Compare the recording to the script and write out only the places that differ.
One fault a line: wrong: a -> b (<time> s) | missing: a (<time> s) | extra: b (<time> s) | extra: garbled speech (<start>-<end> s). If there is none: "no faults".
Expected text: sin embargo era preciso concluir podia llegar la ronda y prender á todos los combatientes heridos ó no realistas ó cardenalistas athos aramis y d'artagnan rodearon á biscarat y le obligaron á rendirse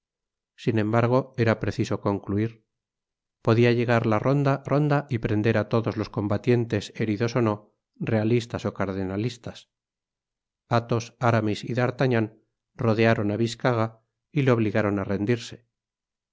extra: ronda (4.7 s)